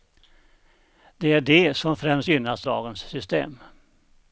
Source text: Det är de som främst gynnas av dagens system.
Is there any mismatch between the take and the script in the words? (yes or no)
yes